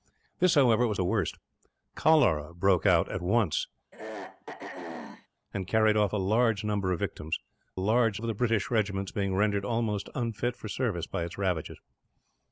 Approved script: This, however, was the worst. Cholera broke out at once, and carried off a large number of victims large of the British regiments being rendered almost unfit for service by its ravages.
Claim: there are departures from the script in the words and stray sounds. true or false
true